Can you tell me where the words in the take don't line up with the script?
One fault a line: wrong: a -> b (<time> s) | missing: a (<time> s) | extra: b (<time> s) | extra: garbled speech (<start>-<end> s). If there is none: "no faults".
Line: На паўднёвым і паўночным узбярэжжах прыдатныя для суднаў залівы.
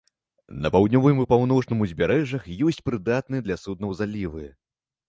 extra: ёсць (2.7 s)